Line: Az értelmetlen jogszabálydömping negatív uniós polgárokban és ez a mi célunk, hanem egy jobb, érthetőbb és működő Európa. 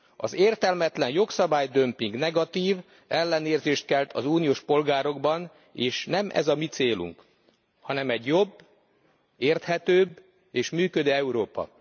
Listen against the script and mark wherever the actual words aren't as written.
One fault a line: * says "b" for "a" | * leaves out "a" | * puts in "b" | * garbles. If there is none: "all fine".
* puts in "ellenérzést kelt az"
* puts in "nem"